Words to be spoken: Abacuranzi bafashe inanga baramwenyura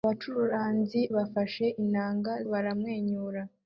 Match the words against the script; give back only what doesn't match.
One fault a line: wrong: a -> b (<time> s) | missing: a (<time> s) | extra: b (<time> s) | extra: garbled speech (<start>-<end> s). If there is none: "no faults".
no faults